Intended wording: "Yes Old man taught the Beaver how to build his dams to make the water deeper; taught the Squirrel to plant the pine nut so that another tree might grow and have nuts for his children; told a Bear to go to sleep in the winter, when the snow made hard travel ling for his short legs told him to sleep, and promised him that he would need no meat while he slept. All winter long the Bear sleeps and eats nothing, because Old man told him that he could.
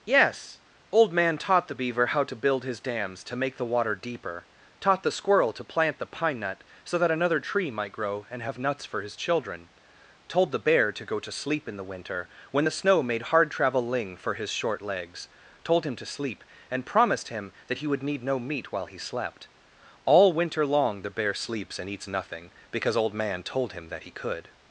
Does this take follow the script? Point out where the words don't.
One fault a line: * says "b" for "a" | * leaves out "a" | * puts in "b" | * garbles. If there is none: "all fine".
* says "the" for "a"